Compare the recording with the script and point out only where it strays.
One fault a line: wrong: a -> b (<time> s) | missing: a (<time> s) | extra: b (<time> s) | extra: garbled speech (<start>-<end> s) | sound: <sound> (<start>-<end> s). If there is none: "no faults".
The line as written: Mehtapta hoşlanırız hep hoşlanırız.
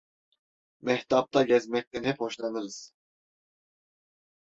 wrong: hoşlanırız -> gezmekten (1.4 s)